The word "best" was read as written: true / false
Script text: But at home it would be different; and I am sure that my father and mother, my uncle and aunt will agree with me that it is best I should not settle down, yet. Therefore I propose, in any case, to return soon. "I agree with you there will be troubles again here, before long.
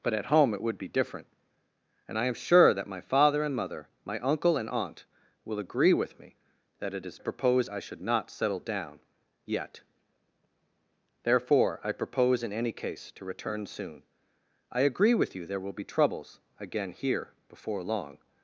false